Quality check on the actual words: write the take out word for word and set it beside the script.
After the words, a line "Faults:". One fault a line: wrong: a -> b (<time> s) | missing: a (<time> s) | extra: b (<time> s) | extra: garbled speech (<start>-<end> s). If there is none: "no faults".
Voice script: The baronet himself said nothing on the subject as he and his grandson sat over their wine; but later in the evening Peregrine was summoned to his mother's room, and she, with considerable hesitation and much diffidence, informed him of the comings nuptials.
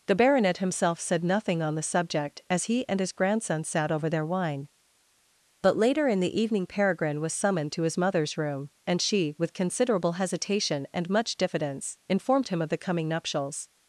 The baronet himself said nothing on the subject as he and his grandson sat over their wine; but later in the evening Peregrine was summoned to his mother's room, and she, with considerable hesitation and much diffidence, informed him of the coming nuptials.
Faults:
wrong: comings -> coming (12.8 s)